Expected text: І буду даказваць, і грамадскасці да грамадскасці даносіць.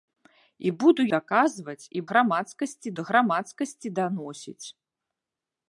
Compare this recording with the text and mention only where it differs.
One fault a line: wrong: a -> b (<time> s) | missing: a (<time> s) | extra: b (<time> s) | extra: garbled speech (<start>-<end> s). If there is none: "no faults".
no faults